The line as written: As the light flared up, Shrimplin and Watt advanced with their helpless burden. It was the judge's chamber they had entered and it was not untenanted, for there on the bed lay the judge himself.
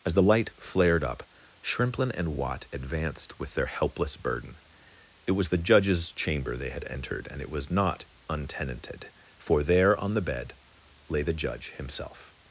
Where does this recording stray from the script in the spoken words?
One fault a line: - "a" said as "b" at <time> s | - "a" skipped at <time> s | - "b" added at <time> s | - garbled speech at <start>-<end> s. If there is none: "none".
none